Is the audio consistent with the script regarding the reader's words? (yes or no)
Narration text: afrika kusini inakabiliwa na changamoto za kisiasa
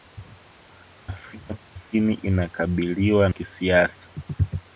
no